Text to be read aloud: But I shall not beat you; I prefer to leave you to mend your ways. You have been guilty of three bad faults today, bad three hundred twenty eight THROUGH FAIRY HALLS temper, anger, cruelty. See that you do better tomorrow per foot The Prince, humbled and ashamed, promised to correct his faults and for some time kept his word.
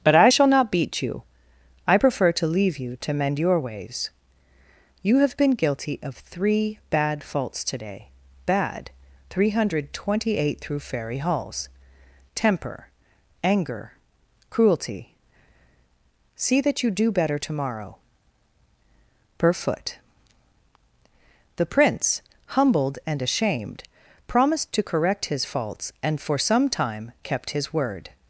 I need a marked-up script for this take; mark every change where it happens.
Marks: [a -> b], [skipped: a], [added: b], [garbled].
But I shall not beat you; I prefer to leave you to mend your ways. You have been guilty of three bad faults today, bad three hundred twenty eight THROUGH FAIRY HALLS temper, anger, cruelty. See that you do better tomorrow per foot The Prince, humbled and ashamed, promised to correct his faults and for some time kept his word.